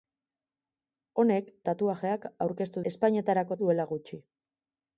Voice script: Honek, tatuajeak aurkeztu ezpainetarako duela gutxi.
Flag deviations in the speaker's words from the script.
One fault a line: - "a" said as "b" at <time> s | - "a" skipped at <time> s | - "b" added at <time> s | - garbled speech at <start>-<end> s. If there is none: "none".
none